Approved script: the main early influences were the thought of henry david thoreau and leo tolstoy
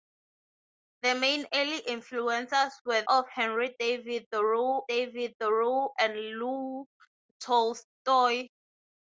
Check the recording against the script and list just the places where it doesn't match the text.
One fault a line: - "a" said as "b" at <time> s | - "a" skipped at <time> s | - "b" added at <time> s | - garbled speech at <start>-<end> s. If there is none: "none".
- "the thought of henry" said as "of henry david thoreau" at 3.1 s